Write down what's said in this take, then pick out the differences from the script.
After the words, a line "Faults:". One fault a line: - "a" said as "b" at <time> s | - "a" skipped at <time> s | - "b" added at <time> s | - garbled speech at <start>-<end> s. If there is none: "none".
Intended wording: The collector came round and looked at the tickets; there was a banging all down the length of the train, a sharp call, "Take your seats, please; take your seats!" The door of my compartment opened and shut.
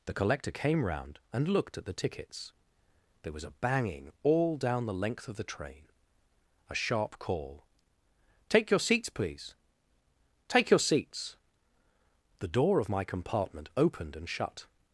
The collector came round and looked at the tickets; there was a banging all down the length of the train, a sharp call, "Take your seats, please; take your seats!" The door of my compartment opened and shut.
Faults:
none